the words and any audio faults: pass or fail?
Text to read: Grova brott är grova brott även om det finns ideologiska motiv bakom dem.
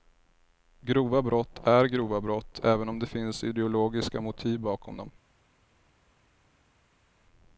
pass